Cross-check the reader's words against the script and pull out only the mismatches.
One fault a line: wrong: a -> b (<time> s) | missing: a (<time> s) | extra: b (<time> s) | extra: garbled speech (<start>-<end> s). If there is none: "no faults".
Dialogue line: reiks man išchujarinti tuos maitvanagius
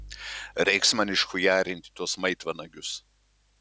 no faults